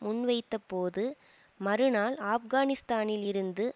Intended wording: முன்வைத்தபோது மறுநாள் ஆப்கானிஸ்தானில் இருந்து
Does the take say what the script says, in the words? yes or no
yes